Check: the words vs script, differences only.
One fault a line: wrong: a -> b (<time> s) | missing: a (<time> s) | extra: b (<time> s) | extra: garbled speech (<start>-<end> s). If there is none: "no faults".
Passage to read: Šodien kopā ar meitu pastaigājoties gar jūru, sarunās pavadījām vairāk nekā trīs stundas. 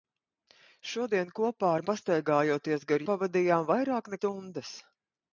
missing: meitu (1.8 s)
missing: jūru sarunās (3.1 s)
missing: nekā trīs (4.2 s)